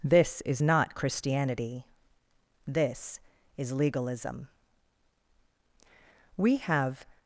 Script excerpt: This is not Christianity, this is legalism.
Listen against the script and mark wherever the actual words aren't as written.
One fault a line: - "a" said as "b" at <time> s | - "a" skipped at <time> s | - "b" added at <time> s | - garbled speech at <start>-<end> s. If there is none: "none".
- "We have" added at 6.4 s